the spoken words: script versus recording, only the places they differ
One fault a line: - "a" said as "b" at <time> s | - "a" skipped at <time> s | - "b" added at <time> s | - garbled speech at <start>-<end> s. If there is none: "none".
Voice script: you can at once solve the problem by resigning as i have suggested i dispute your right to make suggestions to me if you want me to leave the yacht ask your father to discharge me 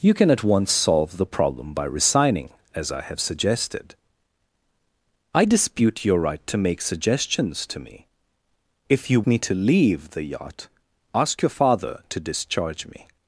- "want" skipped at 9.2 s